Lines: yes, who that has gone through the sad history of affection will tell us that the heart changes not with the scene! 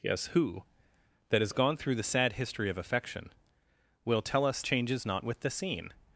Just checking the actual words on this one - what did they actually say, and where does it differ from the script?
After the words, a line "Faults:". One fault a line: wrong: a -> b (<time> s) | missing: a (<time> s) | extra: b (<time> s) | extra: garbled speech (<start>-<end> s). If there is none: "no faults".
yes, who that has gone through the sad history of affection will tell us changes not with the scene!
Faults:
missing: that the heart (4.6 s)